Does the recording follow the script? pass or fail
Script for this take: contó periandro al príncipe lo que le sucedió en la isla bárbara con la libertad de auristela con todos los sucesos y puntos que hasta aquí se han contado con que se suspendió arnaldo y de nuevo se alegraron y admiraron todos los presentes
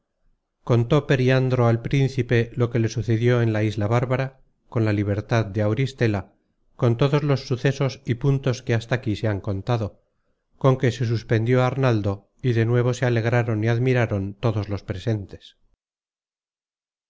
pass